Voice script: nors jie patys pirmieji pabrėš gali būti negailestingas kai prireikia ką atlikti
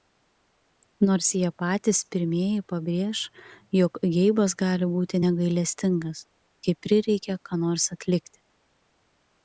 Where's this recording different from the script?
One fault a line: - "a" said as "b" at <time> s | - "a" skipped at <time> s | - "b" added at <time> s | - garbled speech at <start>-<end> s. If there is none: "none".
- "jog geibas" added at 3.8 s
- "nors" added at 7.7 s